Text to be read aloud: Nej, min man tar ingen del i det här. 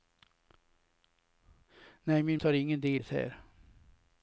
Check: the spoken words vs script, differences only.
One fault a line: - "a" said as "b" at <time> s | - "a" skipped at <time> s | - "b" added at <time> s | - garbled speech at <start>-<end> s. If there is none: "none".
- "man" skipped at 2.4 s
- "i" skipped at 3.0 s